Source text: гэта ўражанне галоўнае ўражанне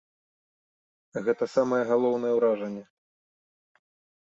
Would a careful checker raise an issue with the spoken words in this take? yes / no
yes